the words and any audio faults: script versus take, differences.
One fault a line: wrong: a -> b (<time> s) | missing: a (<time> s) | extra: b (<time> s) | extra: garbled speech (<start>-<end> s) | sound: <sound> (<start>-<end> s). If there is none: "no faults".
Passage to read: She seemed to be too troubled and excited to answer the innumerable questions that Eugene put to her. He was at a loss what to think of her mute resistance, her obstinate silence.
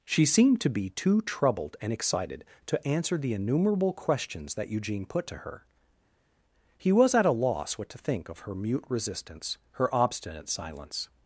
no faults